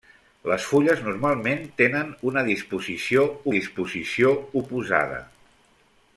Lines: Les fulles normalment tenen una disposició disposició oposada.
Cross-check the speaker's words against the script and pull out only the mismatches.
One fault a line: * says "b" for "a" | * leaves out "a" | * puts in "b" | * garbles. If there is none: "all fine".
all fine